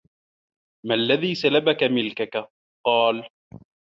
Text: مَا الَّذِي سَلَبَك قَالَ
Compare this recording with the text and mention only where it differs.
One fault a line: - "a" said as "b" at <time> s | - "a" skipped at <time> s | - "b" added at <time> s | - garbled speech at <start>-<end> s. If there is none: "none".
- "مِلْكَك" added at 1.8 s